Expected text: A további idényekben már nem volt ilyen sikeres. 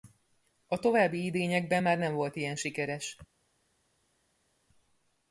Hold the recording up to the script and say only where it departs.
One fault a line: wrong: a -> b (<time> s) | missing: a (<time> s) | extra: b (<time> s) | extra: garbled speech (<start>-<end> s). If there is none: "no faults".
no faults